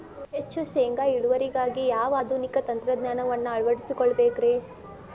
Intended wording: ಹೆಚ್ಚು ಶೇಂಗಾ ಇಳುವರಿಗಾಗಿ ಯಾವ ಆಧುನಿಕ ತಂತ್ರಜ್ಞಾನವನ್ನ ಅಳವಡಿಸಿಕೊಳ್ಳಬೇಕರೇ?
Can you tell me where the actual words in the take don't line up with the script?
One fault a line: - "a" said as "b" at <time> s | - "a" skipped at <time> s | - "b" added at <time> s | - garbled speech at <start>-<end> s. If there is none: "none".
none